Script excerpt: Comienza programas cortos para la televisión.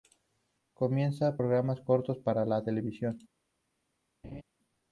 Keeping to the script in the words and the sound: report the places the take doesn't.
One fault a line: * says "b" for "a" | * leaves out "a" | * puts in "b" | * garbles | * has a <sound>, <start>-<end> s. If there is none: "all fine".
* has a laugh, 4.2-4.4 s